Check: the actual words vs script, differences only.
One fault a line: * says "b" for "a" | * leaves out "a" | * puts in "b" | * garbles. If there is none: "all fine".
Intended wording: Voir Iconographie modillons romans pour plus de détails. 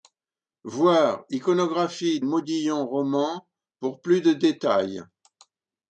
all fine